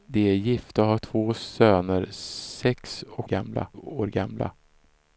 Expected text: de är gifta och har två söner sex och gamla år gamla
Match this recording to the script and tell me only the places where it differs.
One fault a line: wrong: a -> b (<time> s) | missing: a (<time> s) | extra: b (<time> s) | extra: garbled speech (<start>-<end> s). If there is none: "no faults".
no faults